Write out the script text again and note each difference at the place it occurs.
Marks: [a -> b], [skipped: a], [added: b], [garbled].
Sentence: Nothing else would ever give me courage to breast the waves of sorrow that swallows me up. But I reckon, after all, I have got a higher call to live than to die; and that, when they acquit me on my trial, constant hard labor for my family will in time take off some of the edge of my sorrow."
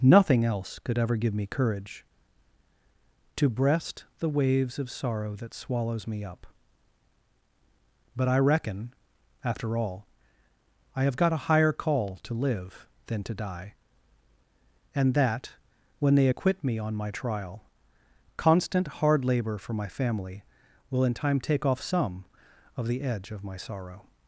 Nothing else [would -> could] ever give me courage to breast the waves of sorrow that swallows me up. But I reckon, after all, I have got a higher call to live than to die; and that, when they acquit me on my trial, constant hard labor for my family will in time take off some of the edge of my sorrow."